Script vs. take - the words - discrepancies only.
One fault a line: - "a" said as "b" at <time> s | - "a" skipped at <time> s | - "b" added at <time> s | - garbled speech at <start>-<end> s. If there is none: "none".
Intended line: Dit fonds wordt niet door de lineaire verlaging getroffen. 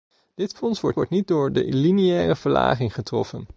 - "wordt" added at 0.9 s